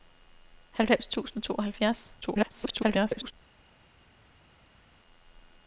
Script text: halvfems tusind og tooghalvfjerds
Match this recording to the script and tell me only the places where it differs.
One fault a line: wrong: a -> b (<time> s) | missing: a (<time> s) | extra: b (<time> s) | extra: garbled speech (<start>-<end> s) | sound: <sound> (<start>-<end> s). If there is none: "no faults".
extra: garbled speech (2.2-3.3 s)